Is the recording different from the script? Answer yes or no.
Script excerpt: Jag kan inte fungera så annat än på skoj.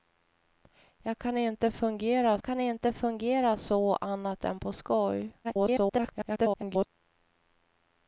yes